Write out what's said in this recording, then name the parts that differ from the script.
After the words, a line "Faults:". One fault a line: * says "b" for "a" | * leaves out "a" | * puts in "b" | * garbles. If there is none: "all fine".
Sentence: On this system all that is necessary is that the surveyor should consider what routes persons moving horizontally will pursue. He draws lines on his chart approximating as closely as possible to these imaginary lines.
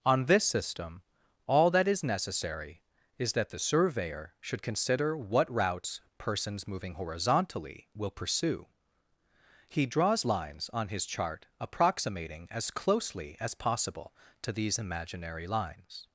On this system all that is necessary is that the surveyor should consider what routes persons moving horizontally will pursue. He draws lines on his chart approximating as closely as possible to these imaginary lines.
Faults:
all fine